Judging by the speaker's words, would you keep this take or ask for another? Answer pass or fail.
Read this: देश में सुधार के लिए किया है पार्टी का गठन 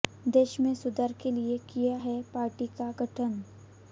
pass